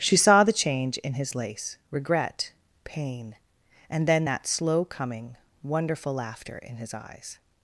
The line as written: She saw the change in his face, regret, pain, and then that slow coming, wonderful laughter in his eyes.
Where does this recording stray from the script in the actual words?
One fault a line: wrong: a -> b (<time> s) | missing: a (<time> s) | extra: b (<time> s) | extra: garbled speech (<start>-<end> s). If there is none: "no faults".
wrong: face -> lace (1.4 s)